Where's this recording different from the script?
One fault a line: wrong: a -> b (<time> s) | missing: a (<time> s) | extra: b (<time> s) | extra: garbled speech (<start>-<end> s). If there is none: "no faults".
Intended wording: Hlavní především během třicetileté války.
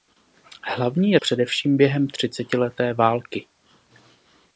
no faults